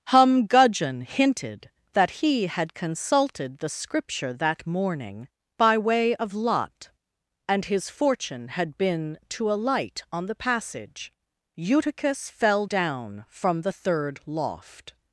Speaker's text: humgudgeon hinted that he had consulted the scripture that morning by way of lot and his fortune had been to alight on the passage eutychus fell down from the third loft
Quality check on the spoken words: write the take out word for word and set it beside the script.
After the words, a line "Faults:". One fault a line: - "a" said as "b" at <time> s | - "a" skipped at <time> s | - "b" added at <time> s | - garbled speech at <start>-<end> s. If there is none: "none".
humgudgeon hinted that he had consulted the scripture that morning by way of lot and his fortune had been to alight on the passage eutychus fell down from the third loft
Faults:
none